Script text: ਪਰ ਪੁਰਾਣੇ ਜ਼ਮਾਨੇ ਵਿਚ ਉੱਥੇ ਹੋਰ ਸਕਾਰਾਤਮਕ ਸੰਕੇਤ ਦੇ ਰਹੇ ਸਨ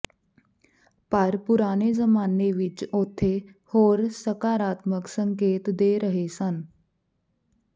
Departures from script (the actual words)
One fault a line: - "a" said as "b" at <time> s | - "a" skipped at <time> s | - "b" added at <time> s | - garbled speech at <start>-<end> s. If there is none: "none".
none